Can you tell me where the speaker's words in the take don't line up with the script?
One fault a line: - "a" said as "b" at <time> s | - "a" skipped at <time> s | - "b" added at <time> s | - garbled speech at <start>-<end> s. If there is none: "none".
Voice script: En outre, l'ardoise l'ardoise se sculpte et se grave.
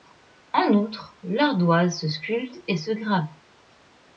- "l'ardoise" skipped at 2.0 s